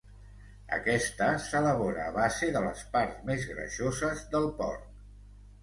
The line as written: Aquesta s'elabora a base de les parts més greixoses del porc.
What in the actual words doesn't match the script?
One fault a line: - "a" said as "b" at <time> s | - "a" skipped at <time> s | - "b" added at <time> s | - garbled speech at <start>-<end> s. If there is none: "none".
none